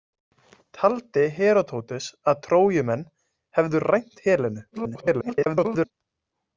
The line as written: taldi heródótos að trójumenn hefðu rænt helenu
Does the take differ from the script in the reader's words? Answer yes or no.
yes